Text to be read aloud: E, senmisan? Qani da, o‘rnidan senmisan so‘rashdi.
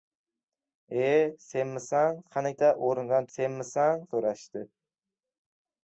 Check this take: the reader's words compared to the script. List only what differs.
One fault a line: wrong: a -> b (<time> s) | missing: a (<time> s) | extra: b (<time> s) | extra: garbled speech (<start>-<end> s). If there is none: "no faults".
no faults